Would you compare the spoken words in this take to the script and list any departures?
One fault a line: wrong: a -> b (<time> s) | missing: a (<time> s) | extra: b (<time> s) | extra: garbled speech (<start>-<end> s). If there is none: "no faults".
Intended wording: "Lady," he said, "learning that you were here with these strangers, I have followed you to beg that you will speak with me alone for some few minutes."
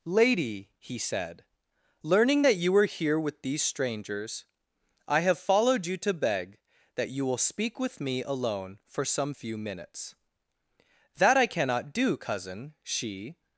extra: That I cannot do cousin she (11.2 s)